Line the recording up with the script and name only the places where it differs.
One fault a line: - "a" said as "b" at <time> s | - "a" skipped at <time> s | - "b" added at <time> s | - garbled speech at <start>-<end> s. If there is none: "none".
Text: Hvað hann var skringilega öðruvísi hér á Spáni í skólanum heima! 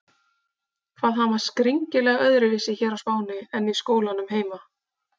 - "en" added at 3.6 s